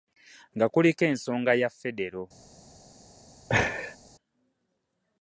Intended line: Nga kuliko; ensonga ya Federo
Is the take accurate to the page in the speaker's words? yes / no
yes